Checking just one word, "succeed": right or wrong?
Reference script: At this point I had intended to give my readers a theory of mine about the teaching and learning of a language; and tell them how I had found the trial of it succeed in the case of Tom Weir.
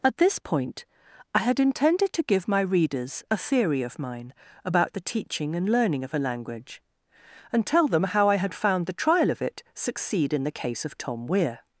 right